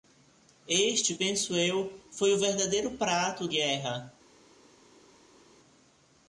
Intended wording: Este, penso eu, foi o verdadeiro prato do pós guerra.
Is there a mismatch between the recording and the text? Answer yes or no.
yes